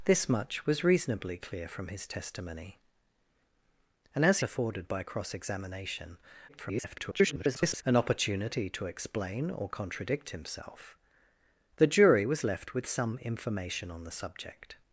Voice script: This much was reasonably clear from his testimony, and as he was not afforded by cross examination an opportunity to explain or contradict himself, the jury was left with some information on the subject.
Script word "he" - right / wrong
wrong